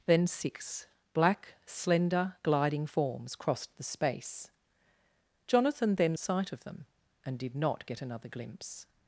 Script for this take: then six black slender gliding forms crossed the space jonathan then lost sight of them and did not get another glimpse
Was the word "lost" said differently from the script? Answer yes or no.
yes